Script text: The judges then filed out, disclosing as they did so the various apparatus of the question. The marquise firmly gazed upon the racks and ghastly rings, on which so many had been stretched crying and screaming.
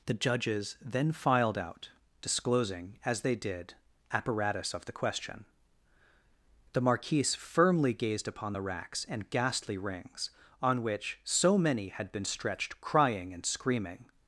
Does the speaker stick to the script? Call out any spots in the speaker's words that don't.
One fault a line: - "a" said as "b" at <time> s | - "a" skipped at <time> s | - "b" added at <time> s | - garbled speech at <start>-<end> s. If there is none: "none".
- "so the various" skipped at 3.8 s